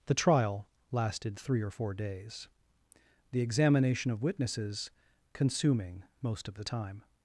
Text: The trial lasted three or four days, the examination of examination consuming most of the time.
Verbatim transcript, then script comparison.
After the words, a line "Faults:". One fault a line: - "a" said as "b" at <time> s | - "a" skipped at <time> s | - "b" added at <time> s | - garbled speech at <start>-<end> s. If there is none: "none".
The trial lasted three or four days, the examination of witnesses consuming most of the time.
Faults:
- "examination" said as "witnesses" at 4.2 s